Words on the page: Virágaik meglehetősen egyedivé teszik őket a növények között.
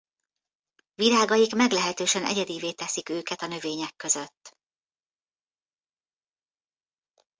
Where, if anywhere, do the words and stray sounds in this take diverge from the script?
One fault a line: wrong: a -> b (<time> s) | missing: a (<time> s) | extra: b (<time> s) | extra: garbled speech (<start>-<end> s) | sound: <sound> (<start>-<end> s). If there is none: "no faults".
no faults